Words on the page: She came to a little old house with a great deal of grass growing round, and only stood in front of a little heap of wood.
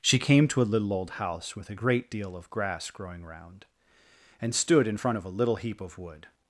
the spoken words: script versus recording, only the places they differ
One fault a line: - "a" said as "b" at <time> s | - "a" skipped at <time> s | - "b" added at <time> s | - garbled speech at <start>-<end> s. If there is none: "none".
- "only" skipped at 4.5 s